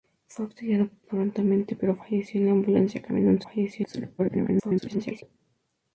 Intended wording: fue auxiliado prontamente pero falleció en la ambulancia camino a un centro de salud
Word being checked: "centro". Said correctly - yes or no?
no